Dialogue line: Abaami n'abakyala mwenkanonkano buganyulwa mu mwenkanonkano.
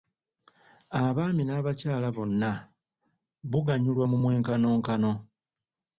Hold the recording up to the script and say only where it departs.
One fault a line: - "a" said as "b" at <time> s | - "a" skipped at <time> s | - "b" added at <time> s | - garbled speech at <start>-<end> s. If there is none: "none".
- "mwenkanonkano" said as "bonna" at 2.1 s